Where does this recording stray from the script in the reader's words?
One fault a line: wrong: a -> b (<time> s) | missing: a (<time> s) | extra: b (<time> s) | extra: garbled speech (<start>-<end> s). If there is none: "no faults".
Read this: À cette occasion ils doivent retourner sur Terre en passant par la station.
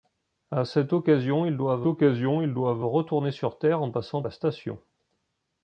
extra: occasion ils doivent (1.9 s)
missing: par (4.2 s)